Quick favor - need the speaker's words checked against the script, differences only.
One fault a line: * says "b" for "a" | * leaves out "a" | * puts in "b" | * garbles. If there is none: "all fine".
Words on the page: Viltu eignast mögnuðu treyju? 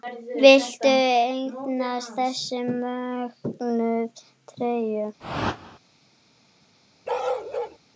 * puts in "þessa"